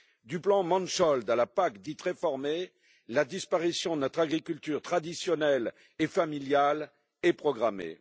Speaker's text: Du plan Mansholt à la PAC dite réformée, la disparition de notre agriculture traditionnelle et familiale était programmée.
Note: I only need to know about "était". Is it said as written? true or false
false